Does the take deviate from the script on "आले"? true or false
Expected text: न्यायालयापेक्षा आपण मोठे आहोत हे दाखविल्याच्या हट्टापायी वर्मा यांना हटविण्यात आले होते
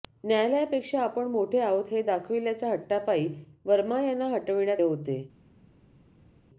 true